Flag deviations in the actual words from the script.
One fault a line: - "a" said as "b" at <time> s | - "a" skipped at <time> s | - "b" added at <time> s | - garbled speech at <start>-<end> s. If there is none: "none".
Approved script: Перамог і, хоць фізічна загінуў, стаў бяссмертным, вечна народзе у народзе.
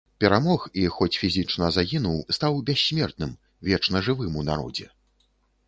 - "народзе" said as "жывым" at 4.1 s